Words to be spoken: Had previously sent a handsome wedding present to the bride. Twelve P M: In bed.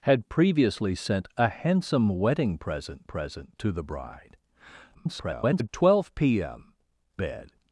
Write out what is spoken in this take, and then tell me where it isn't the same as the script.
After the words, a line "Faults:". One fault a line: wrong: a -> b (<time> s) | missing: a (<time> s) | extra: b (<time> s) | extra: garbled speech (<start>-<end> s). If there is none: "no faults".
Had previously sent a handsome wedding present present to the bride. [garbled] Twelve P M: Bed.
Faults:
extra: present (3.0 s)
extra: garbled speech (4.9-5.7 s)
missing: In (6.7 s)